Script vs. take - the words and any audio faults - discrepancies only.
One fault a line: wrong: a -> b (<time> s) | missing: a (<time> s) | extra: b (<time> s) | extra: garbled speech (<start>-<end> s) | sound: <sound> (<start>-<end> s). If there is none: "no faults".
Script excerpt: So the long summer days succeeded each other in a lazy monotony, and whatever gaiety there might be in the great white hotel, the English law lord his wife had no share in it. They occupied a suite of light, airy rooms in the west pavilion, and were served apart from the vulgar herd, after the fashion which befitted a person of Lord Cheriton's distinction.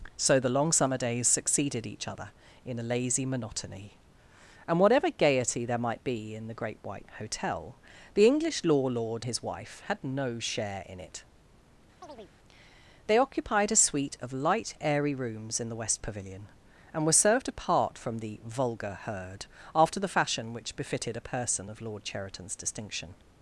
sound: chirp (12.0-12.3 s)